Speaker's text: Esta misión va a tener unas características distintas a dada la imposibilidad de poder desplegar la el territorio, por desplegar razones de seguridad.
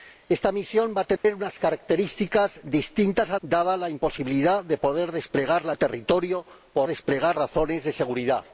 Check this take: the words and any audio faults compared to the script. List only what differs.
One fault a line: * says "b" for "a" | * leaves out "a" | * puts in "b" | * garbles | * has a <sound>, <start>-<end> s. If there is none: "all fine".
* has a dropout, 1.2-1.2 s